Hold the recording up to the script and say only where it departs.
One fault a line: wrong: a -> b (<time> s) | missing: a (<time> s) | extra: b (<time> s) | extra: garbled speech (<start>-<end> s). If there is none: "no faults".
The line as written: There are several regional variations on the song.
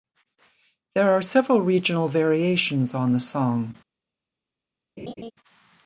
no faults